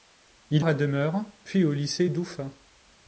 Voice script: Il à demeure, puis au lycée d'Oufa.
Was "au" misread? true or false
false